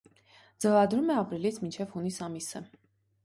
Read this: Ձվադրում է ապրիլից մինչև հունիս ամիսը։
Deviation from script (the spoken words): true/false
false